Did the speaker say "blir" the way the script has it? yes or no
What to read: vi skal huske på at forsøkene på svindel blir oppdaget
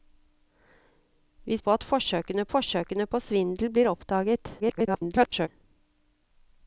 yes